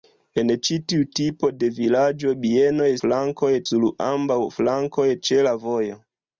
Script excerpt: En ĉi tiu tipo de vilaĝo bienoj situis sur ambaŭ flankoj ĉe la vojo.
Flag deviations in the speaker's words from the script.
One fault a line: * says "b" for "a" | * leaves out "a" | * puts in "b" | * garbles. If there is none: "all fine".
* says "flankoj" for "situis"